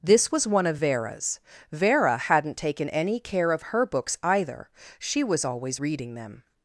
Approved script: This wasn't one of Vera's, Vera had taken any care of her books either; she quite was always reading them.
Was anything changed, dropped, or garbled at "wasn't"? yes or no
yes